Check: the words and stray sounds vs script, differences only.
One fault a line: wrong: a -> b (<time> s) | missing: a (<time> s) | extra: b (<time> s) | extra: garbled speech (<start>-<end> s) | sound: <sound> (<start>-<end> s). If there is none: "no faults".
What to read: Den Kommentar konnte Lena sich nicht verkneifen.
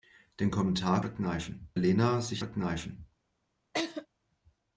wrong: konnte -> verkneifen (1.0 s)
missing: nicht (2.4 s)
sound: laugh (3.7-4.1 s)